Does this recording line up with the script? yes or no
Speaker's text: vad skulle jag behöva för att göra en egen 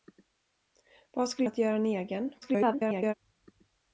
no